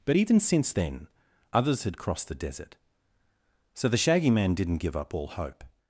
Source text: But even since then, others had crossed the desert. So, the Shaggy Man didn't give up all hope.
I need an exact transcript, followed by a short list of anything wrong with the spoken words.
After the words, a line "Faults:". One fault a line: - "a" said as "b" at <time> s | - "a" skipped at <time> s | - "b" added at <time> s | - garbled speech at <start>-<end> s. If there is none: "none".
But even since then, others had crossed the desert. So, the Shaggy Man didn't give up all hope.
Faults:
none